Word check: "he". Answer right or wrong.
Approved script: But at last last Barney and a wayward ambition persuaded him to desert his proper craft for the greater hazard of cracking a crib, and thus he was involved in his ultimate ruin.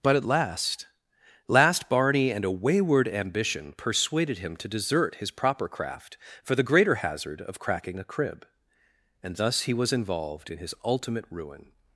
right